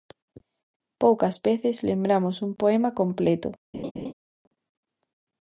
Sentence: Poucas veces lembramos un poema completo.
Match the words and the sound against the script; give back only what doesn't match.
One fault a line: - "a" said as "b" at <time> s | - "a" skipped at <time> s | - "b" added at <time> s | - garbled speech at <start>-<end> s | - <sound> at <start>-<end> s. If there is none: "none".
- laugh at 3.7-4.1 s